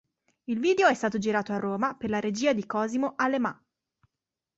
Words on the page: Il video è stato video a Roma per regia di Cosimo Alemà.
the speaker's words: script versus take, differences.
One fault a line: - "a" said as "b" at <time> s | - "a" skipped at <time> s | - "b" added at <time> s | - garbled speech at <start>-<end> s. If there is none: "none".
- "video" said as "girato" at 1.2 s
- "la" added at 2.1 s